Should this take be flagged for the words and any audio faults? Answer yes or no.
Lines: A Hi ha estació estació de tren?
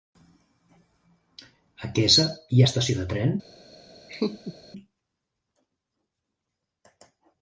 yes